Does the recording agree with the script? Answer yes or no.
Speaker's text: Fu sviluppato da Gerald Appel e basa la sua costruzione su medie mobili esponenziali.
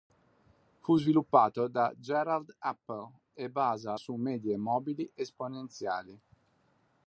no